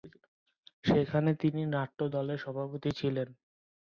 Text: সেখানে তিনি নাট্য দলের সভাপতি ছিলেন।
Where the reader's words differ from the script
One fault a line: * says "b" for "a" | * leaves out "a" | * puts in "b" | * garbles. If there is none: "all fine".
all fine